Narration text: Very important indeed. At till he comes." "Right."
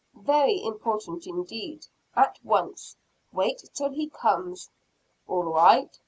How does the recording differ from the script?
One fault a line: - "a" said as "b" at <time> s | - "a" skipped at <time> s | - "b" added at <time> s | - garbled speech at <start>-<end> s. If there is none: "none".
- "once Wait" added at 2.4 s
- "All" added at 5.3 s